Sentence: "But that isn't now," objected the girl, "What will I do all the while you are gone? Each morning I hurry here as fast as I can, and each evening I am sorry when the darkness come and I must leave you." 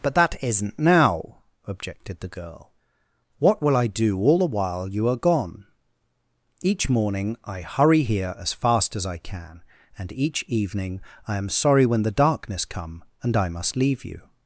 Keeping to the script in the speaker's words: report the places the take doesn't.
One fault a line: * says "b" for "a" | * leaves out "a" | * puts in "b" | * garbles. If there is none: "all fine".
all fine